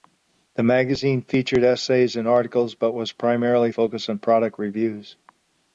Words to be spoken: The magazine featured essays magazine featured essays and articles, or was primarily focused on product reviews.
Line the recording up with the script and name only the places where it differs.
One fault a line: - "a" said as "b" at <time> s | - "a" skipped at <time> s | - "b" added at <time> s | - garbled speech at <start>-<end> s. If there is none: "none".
- "magazine featured essays" skipped at 2.1 s
- "or" said as "but" at 2.7 s